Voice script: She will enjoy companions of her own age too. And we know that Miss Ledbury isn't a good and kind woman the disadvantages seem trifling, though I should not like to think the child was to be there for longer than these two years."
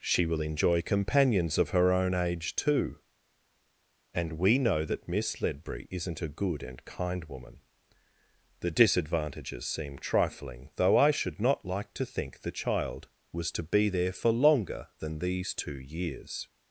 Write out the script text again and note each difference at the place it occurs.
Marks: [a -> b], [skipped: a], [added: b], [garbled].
She will enjoy companions of her own age too. And we know that Miss Ledbury isn't a good and kind woman the disadvantages seem trifling, though I should not like to think the child was to be there for longer than these two years."